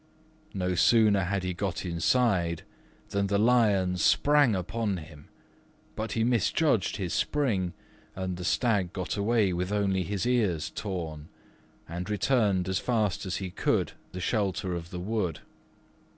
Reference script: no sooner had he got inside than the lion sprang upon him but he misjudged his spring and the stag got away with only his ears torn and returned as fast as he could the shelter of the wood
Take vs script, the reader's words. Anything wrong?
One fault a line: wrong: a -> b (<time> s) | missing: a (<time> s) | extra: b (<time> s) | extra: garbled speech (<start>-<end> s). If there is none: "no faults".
no faults